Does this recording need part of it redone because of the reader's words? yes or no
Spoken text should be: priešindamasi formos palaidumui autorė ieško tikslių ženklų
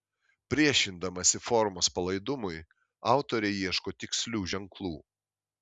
no